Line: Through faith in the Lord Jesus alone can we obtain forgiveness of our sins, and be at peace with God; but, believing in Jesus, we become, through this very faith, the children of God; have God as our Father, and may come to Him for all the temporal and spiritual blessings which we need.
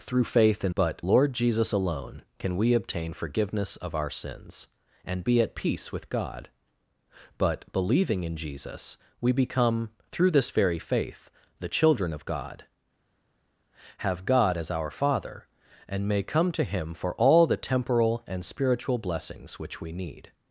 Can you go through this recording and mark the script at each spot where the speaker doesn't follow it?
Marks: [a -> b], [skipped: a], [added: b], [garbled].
Through faith in [the -> but] Lord Jesus alone can we obtain forgiveness of our sins, and be at peace with God; but, believing in Jesus, we become, through this very faith, the children of God; have God as our Father, and may come to Him for all the temporal and spiritual blessings which we need.